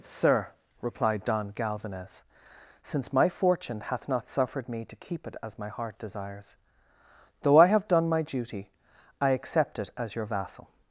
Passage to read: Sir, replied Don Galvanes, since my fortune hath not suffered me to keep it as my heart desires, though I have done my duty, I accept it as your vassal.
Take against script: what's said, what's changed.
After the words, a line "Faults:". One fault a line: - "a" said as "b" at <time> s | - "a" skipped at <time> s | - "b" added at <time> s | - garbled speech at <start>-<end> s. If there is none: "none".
Sir, replied Don Galvanes, since my fortune hath not suffered me to keep it as my heart desires, though I have done my duty, I accept it as your vassal.
Faults:
none